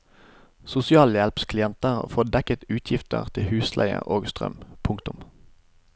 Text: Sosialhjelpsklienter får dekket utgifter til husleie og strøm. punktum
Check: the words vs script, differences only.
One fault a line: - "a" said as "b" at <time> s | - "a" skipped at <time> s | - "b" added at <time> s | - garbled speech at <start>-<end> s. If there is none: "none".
none